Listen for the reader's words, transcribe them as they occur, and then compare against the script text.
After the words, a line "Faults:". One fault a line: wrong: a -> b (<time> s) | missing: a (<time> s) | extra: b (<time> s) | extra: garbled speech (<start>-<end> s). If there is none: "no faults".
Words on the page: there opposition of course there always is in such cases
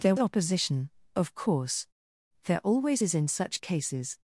there opposition of course there always is in such cases
Faults:
no faults